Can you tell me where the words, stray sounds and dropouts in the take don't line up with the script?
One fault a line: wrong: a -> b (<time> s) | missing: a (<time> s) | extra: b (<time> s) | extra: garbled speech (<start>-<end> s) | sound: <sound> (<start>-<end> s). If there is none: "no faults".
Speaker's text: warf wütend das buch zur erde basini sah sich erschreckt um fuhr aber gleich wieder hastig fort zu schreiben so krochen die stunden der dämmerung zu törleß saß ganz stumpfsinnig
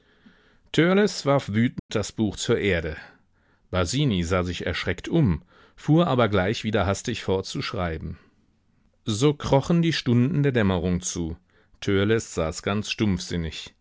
sound: dropout (1.8-1.9 s)